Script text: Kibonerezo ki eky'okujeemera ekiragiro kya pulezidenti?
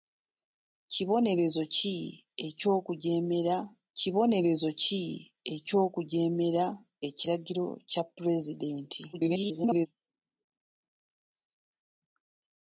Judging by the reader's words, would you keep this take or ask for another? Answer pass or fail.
fail